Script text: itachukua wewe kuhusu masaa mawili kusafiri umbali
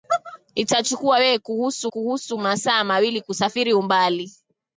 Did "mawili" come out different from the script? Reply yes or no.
no